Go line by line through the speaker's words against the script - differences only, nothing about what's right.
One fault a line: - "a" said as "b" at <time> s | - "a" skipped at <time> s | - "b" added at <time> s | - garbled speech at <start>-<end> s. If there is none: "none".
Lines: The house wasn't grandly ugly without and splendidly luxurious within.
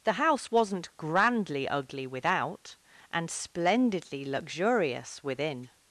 none